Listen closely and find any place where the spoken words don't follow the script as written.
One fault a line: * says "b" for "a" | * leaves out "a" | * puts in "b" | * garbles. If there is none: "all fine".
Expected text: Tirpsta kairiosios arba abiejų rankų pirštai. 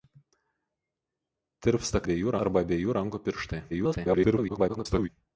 * says "abiejų" for "kairiosios"
* garbles